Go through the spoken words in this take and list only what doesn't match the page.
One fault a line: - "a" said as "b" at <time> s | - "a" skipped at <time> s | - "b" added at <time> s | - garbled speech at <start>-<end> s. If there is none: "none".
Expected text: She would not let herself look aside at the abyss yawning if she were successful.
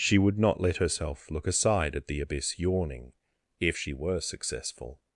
none